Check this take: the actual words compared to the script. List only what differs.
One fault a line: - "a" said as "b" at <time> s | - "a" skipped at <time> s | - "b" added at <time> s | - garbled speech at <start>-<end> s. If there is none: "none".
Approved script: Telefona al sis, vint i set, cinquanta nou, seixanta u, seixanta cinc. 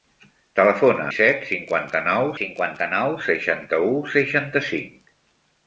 - "al sis vint i set" said as "i set cinquanta nou" at 1.1 s